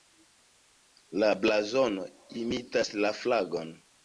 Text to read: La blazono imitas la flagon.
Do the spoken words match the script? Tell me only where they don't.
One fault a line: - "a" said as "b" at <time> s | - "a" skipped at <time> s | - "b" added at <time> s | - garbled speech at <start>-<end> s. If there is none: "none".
none